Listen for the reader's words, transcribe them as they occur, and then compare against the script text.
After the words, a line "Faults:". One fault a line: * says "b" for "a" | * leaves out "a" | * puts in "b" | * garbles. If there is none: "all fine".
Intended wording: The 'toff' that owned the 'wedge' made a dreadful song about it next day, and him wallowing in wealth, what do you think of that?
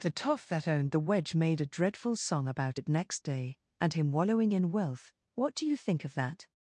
The 'toff' that owned the 'wedge' made a dreadful song about it next day, and him wallowing in wealth, what do you think of that?
Faults:
all fine